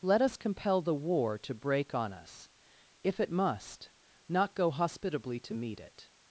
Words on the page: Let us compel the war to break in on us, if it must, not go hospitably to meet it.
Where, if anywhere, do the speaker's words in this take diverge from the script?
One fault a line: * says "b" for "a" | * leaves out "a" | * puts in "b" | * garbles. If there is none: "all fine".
* leaves out "in"